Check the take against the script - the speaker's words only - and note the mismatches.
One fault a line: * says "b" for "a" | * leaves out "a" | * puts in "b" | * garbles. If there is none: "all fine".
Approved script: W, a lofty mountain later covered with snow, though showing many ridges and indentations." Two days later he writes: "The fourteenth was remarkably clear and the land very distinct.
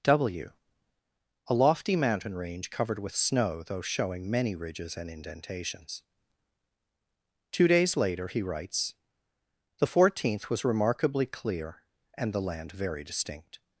* says "range" for "later"